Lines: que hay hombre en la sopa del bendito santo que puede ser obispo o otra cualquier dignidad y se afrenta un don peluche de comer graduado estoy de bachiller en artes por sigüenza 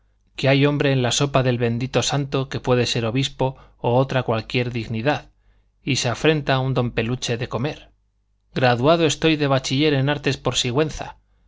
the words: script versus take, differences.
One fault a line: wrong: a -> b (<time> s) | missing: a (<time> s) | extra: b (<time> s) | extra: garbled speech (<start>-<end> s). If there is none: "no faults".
no faults